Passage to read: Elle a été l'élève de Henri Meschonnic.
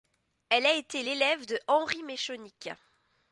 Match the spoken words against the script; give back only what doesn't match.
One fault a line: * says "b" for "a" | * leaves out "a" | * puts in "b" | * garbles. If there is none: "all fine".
all fine